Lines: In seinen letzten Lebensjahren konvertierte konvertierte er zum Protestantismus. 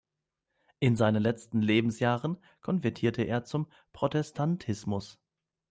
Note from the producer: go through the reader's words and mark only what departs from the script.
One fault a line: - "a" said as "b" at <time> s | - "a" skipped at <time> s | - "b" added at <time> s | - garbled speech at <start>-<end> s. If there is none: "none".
- "konvertierte" skipped at 3.2 s